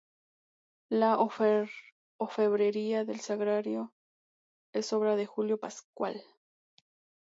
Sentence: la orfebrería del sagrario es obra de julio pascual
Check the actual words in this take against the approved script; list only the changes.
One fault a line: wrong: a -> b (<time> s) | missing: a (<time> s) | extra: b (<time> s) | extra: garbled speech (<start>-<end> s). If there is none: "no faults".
no faults